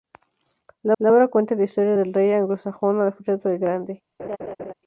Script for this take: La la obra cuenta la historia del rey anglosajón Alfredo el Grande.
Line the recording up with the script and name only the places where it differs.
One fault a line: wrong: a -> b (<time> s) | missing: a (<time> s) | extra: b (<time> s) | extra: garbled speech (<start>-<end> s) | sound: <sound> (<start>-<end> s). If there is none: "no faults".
sound: laugh (4.2-4.7 s)